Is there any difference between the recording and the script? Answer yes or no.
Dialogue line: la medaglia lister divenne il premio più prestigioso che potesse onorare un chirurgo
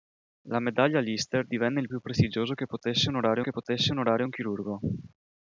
yes